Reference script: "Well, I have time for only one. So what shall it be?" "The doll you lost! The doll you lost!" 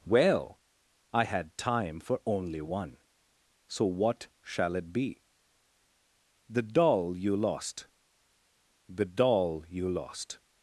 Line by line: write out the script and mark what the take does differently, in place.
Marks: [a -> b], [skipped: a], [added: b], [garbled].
"Well, I [have -> had] time for only one. So what shall it be?" "The doll you lost! The doll you lost!"